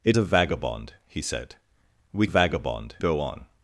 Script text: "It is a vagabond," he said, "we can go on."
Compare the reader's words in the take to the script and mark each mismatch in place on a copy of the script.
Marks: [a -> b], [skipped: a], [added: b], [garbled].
"It [skipped: is] a vagabond," he said, "we [can -> vagabond] go on."